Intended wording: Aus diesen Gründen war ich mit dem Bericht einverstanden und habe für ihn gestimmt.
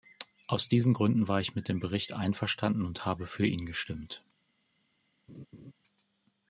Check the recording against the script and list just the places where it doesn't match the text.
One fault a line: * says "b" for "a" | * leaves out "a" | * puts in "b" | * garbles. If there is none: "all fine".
all fine